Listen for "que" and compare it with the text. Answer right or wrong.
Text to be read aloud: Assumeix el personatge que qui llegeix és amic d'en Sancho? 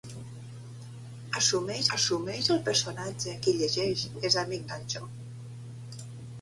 wrong